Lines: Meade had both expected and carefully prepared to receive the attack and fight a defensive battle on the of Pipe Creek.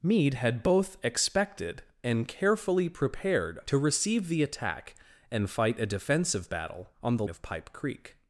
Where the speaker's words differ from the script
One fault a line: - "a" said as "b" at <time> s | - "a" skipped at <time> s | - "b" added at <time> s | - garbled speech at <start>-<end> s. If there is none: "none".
none